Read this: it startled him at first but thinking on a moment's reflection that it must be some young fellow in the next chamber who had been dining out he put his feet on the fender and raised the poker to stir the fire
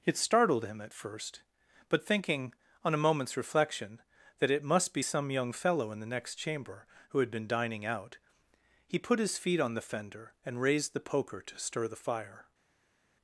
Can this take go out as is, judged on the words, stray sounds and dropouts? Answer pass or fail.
pass